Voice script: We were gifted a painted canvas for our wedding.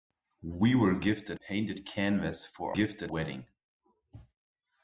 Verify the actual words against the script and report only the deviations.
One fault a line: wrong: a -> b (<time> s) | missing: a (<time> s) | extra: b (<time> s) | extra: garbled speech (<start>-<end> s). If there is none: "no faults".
missing: a (1.4 s)
wrong: our -> gifted (2.7 s)